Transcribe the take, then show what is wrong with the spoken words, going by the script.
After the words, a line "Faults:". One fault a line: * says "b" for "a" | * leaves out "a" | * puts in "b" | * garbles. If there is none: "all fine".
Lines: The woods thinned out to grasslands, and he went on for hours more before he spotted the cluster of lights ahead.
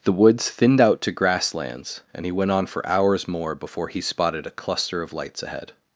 The woods thinned out to grasslands, and he went on for hours more before he spotted a cluster of lights ahead.
Faults:
* says "a" for "the"